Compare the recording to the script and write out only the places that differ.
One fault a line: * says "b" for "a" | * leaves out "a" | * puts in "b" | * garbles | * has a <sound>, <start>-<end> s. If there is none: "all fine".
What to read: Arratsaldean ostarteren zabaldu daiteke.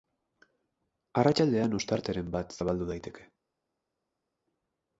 * puts in "bat"